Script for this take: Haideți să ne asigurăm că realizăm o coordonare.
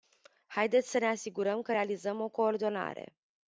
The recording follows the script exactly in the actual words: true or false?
true